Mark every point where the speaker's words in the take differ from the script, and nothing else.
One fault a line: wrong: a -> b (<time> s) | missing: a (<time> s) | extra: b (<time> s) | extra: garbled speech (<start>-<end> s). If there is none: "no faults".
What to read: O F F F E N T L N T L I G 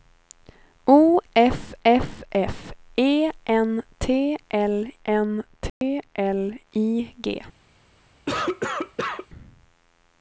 no faults